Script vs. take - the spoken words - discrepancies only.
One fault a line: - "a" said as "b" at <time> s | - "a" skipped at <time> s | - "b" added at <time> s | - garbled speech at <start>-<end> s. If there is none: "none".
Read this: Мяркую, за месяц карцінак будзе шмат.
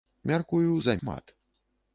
- "месяц карцінак будзе" skipped at 0.9 s